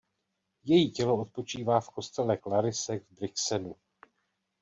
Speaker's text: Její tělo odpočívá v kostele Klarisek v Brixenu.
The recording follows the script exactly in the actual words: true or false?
true